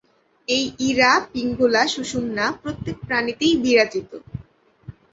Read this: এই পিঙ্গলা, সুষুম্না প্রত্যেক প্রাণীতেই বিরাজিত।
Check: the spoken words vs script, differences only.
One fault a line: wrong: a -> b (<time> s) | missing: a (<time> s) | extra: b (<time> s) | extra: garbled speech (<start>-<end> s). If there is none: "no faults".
extra: ইড়া (0.9 s)